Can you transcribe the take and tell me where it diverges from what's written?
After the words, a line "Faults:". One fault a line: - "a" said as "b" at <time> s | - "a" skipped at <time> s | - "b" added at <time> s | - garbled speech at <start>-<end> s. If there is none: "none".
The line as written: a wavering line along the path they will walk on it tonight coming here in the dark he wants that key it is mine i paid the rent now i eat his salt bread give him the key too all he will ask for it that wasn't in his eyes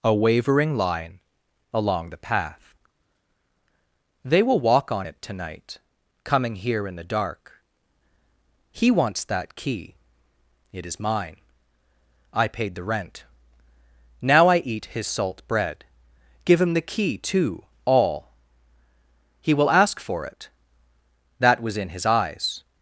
a wavering line along the path they will walk on it tonight coming here in the dark he wants that key it is mine i paid the rent now i eat his salt bread give him the key too all he will ask for it that was in his eyes
Faults:
- "wasn't" said as "was" at 21.6 s